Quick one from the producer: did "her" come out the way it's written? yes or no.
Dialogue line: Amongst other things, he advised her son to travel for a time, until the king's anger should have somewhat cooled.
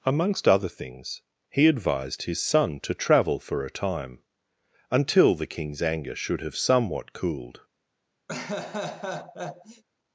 no